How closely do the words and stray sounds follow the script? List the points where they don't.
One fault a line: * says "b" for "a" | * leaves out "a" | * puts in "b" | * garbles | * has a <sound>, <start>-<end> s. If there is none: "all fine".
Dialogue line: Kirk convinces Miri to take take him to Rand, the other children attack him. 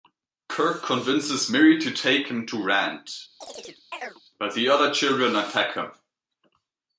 * leaves out "take"
* has a chirp, 3.4-4.2 s
* puts in "but"